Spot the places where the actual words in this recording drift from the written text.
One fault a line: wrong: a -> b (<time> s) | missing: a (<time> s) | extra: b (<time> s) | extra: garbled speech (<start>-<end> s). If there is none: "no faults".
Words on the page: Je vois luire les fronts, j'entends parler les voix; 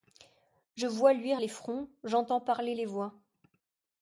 no faults